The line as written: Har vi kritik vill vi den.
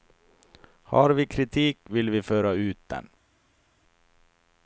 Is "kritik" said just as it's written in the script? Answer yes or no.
yes